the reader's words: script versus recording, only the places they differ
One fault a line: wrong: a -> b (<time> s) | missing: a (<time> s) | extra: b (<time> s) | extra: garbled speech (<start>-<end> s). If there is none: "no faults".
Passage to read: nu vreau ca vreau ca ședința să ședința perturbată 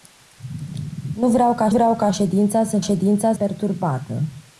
no faults